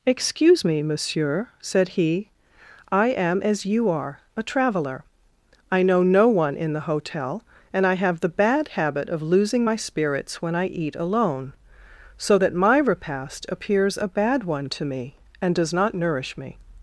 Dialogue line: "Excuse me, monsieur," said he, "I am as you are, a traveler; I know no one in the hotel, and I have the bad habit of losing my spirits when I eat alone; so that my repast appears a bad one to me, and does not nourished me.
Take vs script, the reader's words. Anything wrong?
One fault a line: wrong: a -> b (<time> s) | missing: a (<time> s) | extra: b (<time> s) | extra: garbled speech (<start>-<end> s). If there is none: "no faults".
wrong: nourished -> nourish (15.9 s)